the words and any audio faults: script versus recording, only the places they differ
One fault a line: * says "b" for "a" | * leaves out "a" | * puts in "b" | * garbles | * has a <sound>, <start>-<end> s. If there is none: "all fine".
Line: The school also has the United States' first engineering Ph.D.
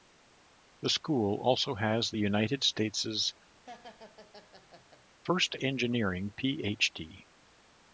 * has a laugh, 3.6-5.0 s